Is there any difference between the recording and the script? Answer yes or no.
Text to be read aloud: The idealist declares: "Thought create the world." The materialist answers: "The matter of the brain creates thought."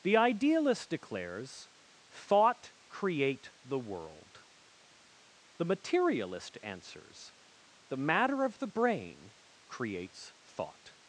no